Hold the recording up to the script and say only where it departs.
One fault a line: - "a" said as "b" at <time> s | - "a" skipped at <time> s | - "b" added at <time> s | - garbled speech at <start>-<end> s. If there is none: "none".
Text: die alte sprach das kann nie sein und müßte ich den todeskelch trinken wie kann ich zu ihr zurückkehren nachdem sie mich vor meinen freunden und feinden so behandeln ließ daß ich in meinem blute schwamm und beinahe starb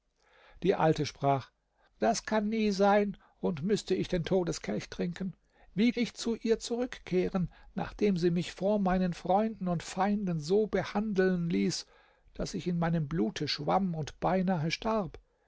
- "kann" skipped at 5.9 s